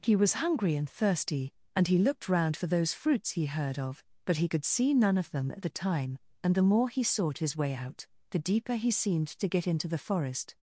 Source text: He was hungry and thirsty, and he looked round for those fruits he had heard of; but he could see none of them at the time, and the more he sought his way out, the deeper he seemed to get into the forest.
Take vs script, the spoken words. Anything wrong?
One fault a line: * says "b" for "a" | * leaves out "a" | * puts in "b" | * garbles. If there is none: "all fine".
* leaves out "had"